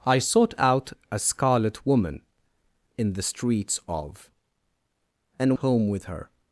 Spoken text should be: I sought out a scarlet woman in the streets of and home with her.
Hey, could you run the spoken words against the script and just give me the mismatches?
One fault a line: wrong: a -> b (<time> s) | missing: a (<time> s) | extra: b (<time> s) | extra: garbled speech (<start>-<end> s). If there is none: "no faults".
no faults